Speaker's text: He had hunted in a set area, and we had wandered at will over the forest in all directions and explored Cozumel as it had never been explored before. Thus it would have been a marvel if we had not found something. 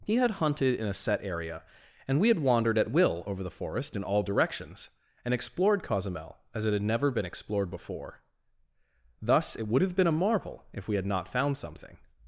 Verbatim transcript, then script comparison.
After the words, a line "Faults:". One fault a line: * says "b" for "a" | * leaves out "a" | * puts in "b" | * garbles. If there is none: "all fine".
He had hunted in a set area, and we had wandered at will over the forest in all directions and explored Cozumel as it had never been explored before. Thus it would have been a marvel if we had not found something.
Faults:
all fine